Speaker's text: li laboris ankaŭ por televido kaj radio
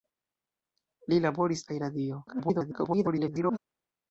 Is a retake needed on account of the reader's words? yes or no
yes